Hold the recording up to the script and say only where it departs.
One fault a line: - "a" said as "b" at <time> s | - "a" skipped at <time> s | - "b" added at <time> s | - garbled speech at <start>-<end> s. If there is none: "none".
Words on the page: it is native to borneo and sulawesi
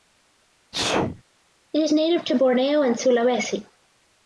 none